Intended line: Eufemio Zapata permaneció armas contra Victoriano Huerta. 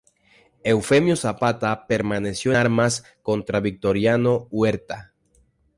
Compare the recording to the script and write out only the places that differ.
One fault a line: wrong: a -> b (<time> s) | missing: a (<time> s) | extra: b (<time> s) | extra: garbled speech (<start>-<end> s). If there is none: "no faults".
no faults